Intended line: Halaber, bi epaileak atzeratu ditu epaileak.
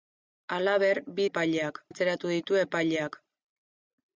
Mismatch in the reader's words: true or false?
false